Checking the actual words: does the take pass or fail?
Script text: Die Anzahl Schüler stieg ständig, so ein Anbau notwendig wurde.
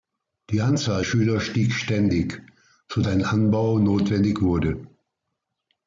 pass